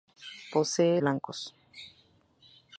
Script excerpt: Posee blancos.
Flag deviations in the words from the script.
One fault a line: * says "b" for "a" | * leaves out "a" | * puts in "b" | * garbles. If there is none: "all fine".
all fine